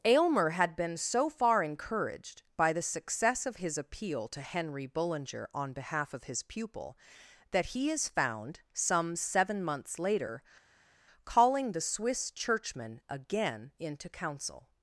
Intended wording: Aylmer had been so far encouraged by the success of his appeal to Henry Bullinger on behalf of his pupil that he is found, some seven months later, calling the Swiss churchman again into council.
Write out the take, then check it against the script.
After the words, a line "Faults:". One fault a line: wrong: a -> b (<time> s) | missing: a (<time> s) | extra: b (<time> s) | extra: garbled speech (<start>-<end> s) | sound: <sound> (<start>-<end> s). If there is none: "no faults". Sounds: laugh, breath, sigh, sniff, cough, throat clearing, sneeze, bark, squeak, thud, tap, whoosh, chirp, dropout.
Aylmer had been so far encouraged by the success of his appeal to Henry Bullinger on behalf of his pupil that he is found, some seven months later, calling the Swiss churchman again into council.
Faults:
no faults